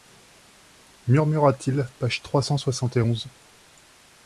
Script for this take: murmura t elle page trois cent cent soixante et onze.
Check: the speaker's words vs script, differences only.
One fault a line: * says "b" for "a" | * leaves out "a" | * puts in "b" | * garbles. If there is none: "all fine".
* says "il" for "elle"
* leaves out "cent"